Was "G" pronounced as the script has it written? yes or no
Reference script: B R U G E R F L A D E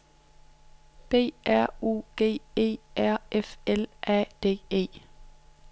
yes